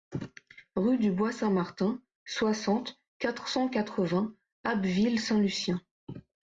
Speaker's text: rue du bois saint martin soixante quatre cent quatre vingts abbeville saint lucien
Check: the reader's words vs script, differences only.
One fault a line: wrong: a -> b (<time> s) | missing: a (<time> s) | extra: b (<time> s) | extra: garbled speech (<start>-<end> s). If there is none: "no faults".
no faults